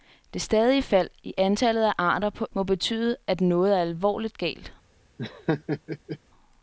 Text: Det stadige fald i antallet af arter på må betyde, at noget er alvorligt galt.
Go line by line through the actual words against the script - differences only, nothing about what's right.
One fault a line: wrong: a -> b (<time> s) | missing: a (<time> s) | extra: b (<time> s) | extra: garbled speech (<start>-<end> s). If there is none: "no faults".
no faults